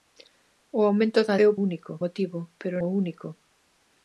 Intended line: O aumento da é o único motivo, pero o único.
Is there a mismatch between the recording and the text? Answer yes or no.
no